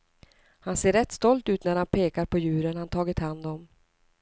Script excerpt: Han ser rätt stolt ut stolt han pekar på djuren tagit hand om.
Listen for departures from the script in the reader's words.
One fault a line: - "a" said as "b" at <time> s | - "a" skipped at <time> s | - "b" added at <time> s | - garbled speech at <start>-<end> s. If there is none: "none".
- "stolt" said as "när" at 1.6 s
- "han" added at 2.8 s